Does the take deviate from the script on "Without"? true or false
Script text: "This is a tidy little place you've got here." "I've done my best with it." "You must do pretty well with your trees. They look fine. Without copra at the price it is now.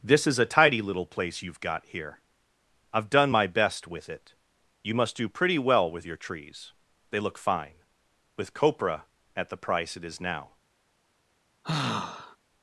true